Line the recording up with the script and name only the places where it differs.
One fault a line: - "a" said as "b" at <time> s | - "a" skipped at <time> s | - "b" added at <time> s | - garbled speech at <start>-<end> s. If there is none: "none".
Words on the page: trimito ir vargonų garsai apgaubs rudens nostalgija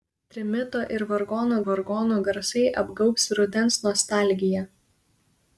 - "vargonų" added at 1.7 s